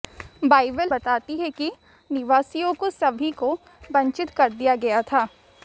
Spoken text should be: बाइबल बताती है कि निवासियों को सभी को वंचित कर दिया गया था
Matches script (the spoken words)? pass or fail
pass